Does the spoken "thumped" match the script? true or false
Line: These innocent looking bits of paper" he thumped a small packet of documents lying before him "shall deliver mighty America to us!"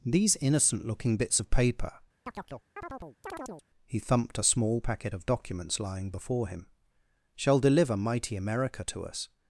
true